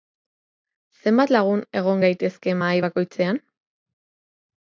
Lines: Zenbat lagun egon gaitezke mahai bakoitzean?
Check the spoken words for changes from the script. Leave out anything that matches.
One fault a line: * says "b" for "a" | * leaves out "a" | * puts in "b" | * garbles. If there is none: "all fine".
all fine